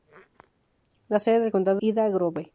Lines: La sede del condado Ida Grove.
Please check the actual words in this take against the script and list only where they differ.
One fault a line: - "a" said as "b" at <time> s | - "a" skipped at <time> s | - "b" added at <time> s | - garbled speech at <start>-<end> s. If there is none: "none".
none